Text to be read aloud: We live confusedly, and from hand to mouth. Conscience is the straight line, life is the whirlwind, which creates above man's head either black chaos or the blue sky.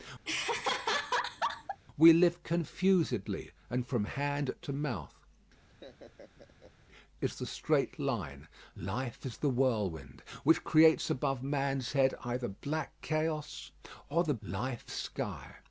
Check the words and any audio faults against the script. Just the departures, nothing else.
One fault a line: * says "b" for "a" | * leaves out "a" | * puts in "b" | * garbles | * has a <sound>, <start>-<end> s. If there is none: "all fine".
* has a laugh, 0.2-1.8 s
* leaves out "Conscience"
* has a laugh, 5.7-6.7 s
* says "life" for "blue"